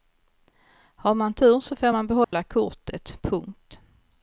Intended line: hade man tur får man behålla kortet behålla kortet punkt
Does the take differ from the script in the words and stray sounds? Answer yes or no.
yes